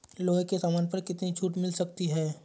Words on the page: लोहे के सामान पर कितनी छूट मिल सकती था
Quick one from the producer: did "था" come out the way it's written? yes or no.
no